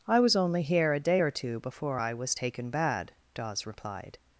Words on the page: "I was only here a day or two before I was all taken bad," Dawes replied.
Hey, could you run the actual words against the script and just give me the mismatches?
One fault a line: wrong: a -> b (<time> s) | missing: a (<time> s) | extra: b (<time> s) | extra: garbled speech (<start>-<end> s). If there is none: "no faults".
missing: all (2.4 s)